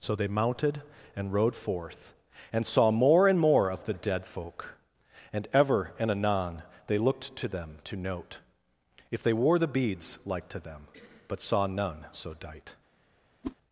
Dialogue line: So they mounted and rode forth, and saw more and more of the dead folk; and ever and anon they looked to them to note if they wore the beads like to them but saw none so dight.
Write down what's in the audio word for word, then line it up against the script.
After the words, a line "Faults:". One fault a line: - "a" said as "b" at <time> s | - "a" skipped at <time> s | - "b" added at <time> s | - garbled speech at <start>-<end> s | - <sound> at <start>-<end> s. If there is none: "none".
So they mounted and rode forth, and saw more and more of the dead folk; and ever and anon they looked to them to note if they wore the beads like to them but saw none so dight.
Faults:
- whoosh at 13.4-13.6 s